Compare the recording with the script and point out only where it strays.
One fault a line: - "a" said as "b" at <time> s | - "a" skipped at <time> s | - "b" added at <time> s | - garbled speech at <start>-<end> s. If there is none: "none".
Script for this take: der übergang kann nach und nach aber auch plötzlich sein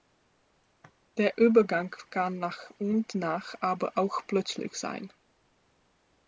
none